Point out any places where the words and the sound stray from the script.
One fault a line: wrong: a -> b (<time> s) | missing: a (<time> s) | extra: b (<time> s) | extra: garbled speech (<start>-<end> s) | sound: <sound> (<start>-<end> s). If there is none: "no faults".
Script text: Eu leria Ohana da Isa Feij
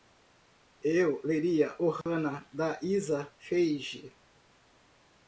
sound: dropout (2.0-2.1 s)